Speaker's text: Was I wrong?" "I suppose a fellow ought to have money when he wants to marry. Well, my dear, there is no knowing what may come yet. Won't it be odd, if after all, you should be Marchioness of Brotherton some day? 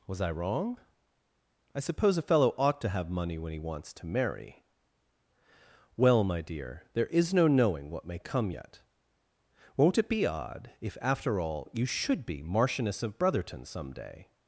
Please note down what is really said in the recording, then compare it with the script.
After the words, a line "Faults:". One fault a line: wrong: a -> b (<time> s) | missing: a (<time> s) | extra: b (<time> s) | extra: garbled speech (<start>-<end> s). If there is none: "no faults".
Was I wrong?" "I suppose a fellow ought to have money when he wants to marry. Well, my dear, there is no knowing what may come yet. Won't it be odd, if after all, you should be Marchioness of Brotherton some day?
Faults:
no faults